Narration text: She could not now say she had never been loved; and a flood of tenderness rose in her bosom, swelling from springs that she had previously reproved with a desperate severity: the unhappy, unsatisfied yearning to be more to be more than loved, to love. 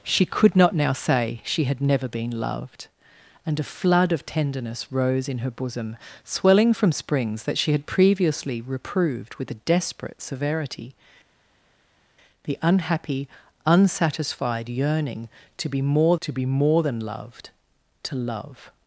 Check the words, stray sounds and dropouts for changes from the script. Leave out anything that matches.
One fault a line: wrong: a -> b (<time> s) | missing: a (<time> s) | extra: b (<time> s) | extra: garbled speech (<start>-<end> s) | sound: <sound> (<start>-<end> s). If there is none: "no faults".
no faults